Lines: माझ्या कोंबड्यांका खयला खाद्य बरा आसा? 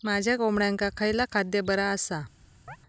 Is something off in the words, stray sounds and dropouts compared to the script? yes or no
yes